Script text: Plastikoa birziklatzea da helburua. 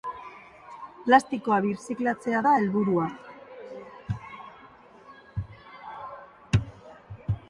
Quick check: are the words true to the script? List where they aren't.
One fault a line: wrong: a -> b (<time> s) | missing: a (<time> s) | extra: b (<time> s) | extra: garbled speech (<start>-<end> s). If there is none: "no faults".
no faults